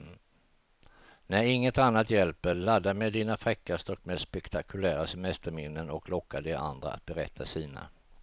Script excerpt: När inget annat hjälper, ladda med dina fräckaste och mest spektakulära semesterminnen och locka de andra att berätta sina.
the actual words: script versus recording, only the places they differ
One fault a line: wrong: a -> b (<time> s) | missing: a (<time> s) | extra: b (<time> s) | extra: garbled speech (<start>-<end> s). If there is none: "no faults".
no faults